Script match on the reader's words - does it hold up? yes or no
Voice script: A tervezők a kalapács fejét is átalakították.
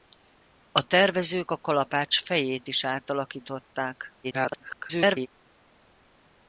no